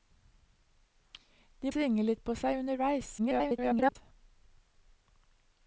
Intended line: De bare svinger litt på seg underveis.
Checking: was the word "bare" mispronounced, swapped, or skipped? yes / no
yes